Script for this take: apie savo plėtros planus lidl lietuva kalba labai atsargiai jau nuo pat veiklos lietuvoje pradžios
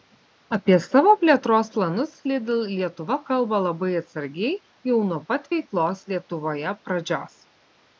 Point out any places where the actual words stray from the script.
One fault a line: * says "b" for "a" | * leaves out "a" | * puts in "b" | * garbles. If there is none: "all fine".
all fine